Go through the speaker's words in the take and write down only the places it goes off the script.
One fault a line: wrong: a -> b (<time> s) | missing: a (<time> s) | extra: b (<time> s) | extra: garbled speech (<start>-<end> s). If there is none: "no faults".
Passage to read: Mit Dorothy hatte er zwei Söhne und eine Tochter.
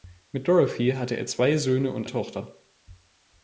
missing: eine (2.1 s)